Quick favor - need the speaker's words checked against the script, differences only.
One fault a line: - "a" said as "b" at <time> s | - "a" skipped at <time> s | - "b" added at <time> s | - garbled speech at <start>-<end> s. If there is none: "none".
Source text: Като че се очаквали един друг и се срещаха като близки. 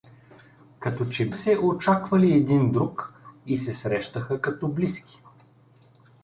none